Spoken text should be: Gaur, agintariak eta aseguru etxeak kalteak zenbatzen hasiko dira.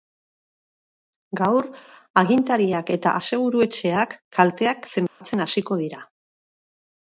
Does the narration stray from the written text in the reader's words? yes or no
no